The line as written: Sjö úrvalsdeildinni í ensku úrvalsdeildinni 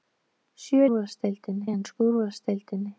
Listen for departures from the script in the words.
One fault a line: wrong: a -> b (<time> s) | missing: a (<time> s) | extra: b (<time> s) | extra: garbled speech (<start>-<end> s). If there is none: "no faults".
no faults